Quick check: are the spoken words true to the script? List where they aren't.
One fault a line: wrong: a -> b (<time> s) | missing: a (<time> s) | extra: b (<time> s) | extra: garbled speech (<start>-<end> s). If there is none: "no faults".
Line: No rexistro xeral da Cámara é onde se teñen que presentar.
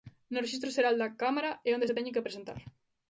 no faults